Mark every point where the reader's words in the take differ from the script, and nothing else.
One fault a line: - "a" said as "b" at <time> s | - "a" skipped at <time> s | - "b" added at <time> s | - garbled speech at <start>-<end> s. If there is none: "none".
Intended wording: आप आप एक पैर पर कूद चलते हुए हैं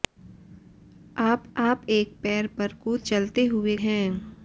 none